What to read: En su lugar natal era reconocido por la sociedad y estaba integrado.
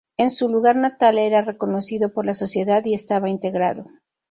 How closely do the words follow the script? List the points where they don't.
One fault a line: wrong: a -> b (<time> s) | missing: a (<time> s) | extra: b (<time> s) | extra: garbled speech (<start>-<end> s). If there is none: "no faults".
no faults